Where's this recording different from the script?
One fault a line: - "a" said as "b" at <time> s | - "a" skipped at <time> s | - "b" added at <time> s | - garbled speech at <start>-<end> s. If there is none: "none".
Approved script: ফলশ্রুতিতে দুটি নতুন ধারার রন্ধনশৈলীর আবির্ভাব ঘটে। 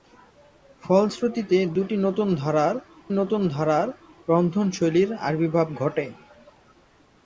- "নতুন ধারার" added at 3.1 s